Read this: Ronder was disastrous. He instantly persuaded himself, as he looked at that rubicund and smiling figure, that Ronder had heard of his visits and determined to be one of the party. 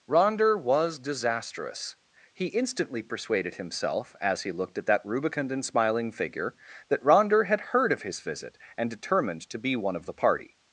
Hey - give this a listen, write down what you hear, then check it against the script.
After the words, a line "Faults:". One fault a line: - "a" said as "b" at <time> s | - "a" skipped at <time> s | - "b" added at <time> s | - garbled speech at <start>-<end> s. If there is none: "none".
Ronder was disastrous. He instantly persuaded himself, as he looked at that rubicund and smiling figure, that Ronder had heard of his visit and determined to be one of the party.
Faults:
- "visits" said as "visit" at 8.2 s